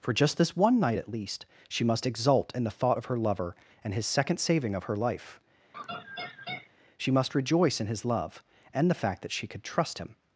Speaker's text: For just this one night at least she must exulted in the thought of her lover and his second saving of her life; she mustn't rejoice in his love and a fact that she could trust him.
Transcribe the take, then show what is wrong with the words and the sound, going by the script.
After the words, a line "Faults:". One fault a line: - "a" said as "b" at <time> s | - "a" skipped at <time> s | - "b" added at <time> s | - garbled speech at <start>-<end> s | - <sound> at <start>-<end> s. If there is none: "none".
For just this one night at least she must exult in the thought of her lover and his second saving of her life; she must rejoice in his love and the fact that she could trust him.
Faults:
- "exulted" said as "exult" at 2.1 s
- laugh at 5.7-6.7 s
- "mustn't" said as "must" at 7.1 s
- "a" said as "the" at 8.9 s